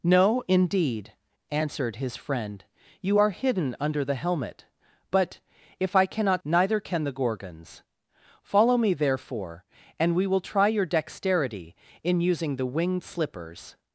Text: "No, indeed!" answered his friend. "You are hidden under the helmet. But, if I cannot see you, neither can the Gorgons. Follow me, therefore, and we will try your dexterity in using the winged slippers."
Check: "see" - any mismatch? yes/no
yes